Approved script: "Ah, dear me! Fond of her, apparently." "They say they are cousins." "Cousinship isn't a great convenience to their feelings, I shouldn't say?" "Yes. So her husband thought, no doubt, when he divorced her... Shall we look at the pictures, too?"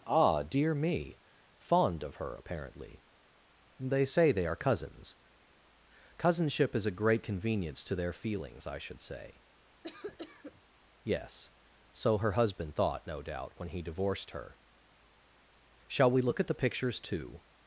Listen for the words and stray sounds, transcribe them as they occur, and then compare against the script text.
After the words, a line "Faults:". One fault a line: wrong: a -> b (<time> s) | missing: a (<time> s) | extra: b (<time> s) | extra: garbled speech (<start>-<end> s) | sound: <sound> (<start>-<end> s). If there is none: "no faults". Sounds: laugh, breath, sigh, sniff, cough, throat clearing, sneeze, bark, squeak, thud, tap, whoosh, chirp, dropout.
"Ah, dear me! Fond of her, apparently." "They say they are cousins." "Cousinship is a great convenience to their feelings, I should say?" "Yes. So her husband thought, no doubt, when he divorced her... Shall we look at the pictures, too?"
Faults:
wrong: isn't -> is (6.8 s)
wrong: shouldn't -> should (8.8 s)
sound: cough (9.8-10.6 s)